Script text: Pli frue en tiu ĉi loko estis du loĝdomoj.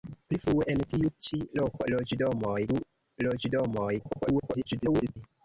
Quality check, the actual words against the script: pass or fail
fail